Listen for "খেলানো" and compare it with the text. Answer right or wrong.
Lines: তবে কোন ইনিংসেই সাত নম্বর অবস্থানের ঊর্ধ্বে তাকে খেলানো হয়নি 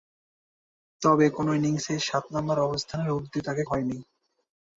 wrong